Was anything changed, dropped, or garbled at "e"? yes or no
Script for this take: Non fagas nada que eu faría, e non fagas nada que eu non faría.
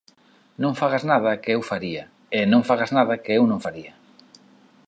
no